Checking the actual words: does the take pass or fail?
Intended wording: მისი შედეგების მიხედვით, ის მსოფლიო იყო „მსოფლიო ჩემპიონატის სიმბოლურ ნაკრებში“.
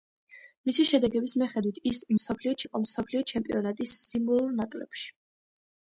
pass